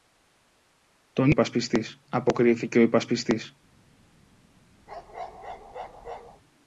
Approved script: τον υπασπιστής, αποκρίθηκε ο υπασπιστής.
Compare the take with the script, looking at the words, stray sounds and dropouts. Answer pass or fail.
fail